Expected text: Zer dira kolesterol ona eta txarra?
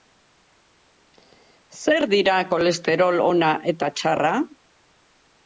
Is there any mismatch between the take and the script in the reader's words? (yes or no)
no